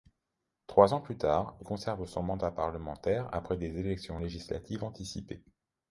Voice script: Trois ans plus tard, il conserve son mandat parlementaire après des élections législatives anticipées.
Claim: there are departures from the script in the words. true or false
true